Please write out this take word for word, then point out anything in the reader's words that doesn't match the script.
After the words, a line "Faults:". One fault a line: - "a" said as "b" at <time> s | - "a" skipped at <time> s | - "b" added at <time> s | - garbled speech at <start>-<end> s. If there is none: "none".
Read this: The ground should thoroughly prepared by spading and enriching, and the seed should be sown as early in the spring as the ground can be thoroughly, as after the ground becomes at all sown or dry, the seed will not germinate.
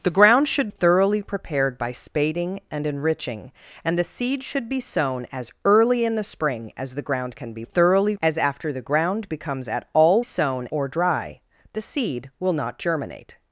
The ground should thoroughly prepared by spading and enriching, and the seed should be sown as early in the spring as the ground can be thoroughly, as after the ground becomes at all sown or dry, the seed will not germinate.
Faults:
none